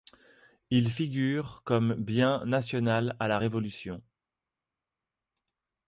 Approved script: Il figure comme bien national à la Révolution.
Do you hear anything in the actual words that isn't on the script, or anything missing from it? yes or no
no